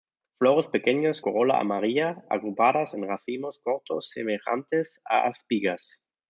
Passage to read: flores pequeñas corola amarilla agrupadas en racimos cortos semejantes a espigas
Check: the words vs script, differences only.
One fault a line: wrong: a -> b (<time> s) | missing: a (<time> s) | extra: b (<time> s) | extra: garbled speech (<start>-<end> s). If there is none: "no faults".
no faults